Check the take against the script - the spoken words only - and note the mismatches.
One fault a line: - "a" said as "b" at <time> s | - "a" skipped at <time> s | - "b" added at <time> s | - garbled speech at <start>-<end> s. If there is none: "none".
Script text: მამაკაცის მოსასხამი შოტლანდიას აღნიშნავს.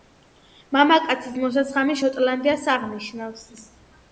none